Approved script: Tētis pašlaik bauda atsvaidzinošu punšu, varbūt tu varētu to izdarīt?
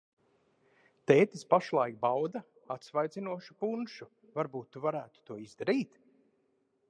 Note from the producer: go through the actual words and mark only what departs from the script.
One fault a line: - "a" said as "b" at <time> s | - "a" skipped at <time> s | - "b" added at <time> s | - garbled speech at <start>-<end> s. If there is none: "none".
none